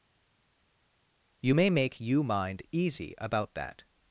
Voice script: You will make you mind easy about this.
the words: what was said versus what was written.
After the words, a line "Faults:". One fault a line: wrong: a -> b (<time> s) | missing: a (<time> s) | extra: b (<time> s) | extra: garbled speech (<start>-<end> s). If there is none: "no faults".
You may make you mind easy about that.
Faults:
wrong: will -> may (1.5 s)
wrong: this -> that (3.5 s)